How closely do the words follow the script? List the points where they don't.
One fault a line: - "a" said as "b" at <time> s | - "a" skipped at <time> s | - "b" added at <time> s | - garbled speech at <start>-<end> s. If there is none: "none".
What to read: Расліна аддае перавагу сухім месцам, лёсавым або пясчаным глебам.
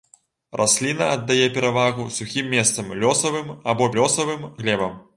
- "пясчаным" said as "лёсавым" at 4.0 s